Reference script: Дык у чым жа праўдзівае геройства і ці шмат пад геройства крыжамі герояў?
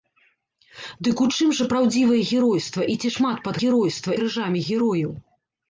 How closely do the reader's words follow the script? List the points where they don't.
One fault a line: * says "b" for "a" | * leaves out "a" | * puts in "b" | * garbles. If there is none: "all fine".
all fine